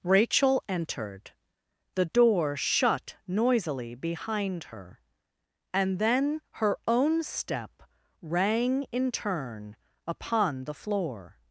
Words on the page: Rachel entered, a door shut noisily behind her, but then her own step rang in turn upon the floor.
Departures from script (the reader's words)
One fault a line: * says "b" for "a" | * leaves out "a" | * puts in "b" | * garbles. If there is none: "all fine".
* says "the" for "a"
* says "and" for "but"